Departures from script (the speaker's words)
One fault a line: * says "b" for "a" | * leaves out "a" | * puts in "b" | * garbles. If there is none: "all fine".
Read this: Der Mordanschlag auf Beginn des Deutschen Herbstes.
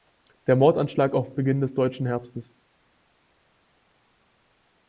all fine